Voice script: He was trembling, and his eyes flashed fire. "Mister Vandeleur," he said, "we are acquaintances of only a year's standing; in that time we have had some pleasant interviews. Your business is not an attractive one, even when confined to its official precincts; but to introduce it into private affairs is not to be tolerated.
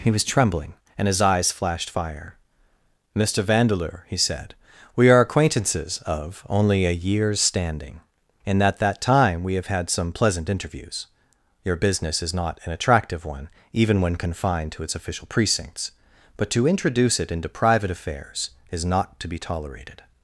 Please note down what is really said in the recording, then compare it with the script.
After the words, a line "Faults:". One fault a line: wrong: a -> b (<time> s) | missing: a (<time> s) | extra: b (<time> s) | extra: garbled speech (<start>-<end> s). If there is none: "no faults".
He was trembling, and his eyes flashed fire. "Mister Vandeleur," he said, "we are acquaintances of only a year's standing; in that that time we have had some pleasant interviews. Your business is not an attractive one, even when confined to its official precincts; but to introduce it into private affairs is not to be tolerated.
Faults:
extra: that (8.8 s)